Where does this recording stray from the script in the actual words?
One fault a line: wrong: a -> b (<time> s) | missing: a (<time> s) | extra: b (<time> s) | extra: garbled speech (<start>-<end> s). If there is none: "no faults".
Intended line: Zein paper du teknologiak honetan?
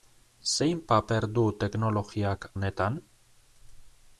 no faults